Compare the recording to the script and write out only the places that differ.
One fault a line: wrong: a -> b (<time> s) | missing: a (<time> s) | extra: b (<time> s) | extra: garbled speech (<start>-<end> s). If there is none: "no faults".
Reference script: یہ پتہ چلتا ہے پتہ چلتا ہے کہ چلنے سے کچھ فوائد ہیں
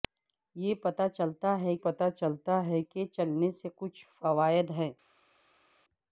no faults